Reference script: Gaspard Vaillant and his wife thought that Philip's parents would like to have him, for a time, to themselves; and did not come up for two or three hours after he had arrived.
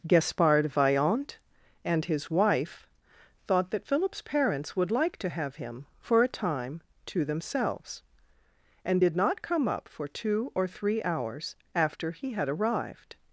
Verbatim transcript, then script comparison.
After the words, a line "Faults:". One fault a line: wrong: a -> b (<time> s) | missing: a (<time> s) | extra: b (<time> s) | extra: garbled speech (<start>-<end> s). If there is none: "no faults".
Gaspard Vaillant and his wife thought that Philip's parents would like to have him, for a time, to themselves; and did not come up for two or three hours after he had arrived.
Faults:
no faults